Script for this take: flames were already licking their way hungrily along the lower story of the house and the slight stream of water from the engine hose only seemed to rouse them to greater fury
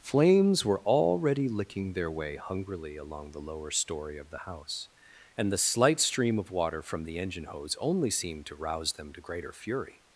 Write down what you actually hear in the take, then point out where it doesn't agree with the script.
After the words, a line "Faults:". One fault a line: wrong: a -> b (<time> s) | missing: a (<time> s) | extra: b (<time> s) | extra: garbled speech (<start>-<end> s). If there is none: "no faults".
flames were already licking their way hungrily along the lower story of the house and the slight stream of water from the engine hose only seemed to rouse them to greater fury
Faults:
no faults